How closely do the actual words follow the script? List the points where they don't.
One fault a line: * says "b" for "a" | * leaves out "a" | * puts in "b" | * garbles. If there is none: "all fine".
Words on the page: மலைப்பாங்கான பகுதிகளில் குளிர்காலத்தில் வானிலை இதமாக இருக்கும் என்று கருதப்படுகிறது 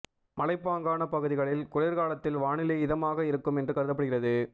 all fine